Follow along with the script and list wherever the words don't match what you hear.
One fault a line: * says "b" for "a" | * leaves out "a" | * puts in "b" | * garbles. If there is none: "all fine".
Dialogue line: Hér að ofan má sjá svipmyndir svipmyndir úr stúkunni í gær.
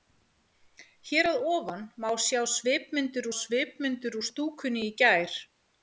all fine